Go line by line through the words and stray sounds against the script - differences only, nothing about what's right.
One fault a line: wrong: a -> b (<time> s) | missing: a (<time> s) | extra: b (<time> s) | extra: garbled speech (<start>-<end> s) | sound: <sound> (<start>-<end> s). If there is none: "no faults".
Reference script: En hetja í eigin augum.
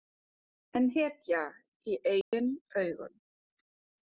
sound: dropout (2.2-2.3 s)